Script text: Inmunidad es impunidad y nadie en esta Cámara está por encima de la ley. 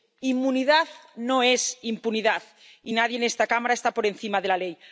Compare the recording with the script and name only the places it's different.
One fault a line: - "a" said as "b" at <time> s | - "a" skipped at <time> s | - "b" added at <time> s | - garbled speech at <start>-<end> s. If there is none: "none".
- "no" added at 1.1 s